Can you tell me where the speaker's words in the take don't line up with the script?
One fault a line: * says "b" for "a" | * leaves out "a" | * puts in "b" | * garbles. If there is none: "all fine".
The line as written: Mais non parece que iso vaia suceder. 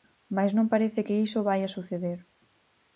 all fine